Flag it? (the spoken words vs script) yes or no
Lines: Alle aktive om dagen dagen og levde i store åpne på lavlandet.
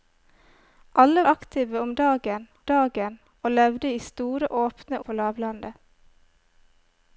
no